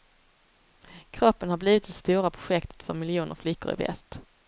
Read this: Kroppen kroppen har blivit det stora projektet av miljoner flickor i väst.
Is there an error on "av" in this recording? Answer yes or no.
yes